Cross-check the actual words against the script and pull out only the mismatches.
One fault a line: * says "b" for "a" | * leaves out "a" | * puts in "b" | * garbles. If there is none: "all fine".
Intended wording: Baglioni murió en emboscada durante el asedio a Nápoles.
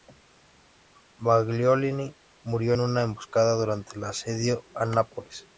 * puts in "una"